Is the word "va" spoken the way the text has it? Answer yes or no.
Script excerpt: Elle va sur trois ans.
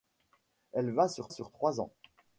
yes